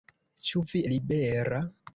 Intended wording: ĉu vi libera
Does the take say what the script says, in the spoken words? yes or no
yes